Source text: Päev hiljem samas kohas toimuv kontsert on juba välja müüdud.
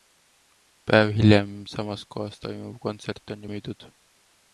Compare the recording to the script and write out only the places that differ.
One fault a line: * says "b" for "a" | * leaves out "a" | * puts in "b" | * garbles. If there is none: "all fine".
* leaves out "juba välja"